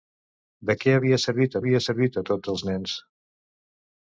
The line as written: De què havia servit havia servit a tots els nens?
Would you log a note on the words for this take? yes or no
no